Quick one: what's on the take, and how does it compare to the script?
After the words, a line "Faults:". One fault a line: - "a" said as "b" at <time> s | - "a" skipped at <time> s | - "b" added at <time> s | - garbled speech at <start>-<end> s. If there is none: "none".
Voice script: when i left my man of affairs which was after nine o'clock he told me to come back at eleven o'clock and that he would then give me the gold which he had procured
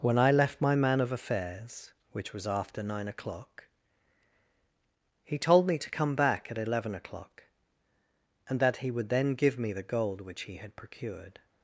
when i left my man of affairs which was after nine o'clock he told me to come back at eleven o'clock and that he would then give me the gold which he had procured
Faults:
none